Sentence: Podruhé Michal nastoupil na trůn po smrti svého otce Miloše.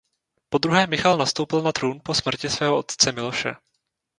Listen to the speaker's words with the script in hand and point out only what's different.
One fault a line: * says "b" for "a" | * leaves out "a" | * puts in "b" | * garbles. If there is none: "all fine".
all fine